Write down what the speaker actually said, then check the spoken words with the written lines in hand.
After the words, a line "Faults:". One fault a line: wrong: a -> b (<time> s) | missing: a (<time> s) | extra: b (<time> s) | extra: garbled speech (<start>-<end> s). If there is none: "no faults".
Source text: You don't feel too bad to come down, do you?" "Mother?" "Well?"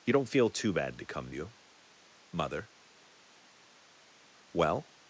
You don't feel too bad to come you?" "Mother?" "Well?"
Faults:
missing: down do (1.3 s)